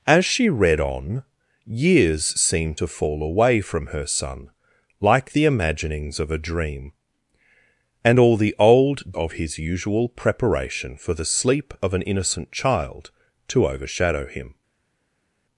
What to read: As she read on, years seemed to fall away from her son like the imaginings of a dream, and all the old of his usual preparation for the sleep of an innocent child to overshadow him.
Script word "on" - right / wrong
right